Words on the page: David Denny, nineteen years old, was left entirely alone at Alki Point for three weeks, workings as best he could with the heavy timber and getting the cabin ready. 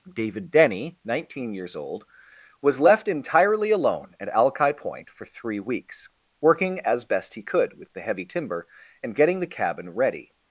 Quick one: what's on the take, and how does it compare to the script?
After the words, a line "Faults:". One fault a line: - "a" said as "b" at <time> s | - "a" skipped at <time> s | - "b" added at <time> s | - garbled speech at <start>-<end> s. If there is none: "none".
David Denny, nineteen years old, was left entirely alone at Alki Point for three weeks, working as best he could with the heavy timber and getting the cabin ready.
Faults:
- "workings" said as "working" at 6.4 s